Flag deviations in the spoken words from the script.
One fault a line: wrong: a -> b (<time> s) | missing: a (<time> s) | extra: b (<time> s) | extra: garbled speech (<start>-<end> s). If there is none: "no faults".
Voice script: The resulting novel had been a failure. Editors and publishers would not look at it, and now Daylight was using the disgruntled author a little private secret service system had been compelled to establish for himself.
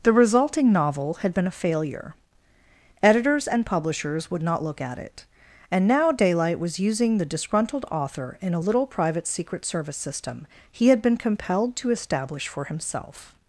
extra: in (8.4 s)
extra: he (10.7 s)